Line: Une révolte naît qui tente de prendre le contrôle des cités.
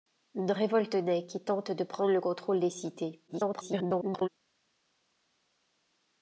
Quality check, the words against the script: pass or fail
fail